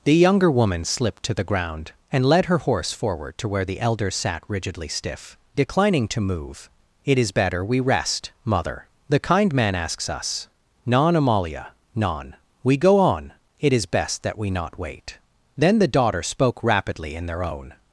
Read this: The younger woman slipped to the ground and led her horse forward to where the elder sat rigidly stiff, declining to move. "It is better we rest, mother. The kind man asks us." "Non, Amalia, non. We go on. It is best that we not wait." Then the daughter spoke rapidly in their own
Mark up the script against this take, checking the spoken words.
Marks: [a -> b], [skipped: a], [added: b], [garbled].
The younger woman slipped to the ground and led her horse forward to where the elder sat rigidly stiff, declining to move. "It is better we rest, mother. The kind man asks us." "Non, Amalia, non. We go on. It is best that we not wait." Then the daughter spoke rapidly in their own